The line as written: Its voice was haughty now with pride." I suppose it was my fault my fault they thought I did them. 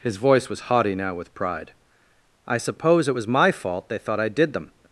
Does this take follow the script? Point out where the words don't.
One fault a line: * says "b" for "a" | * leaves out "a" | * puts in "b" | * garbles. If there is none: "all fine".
* says "His" for "Its"
* leaves out "my fault"